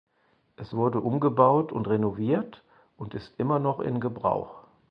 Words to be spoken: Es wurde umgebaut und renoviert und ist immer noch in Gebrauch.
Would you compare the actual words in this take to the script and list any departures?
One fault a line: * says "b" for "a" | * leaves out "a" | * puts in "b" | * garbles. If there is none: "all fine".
all fine